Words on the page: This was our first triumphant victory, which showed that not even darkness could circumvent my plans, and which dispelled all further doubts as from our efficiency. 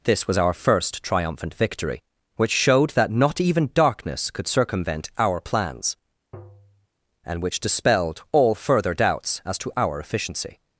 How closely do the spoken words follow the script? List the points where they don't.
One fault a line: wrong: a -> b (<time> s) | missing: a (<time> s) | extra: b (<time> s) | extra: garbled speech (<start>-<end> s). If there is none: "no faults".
wrong: my -> our (5.2 s)
wrong: from -> to (9.6 s)